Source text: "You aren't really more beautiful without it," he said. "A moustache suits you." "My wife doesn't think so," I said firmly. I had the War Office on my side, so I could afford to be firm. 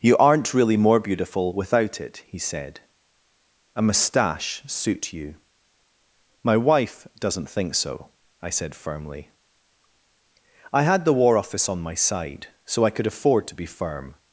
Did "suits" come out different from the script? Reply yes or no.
yes